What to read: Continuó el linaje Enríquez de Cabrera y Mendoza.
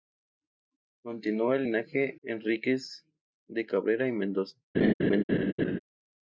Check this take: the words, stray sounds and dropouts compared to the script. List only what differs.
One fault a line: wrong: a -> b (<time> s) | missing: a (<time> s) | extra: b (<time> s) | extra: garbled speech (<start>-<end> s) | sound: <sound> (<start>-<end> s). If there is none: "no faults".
sound: laugh (4.7-5.8 s)